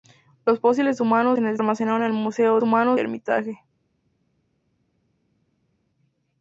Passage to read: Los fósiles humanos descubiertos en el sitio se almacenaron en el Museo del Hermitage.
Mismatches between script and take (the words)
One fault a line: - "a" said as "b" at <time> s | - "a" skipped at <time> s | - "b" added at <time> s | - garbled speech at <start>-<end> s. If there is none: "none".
- "descubiertos" skipped at 1.4 s
- "sitio se" skipped at 1.6 s
- "del" said as "humanos" at 2.6 s